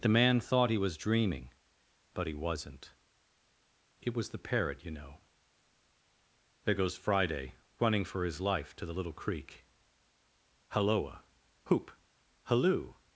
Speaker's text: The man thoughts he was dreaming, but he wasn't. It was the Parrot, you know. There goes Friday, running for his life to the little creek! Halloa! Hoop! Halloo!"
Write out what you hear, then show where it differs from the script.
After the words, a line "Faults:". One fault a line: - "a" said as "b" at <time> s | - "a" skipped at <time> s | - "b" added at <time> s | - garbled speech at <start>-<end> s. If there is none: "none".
The man thought he was dreaming, but he wasn't. It was the Parrot, you know. There goes Friday, running for his life to the little creek! Halloa! Hoop! Halloo!"
Faults:
- "thoughts" said as "thought" at 0.4 s